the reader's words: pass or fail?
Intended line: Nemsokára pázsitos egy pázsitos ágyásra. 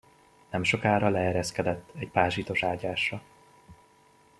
fail